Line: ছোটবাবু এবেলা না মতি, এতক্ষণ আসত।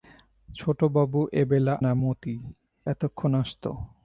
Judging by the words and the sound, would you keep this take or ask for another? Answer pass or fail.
pass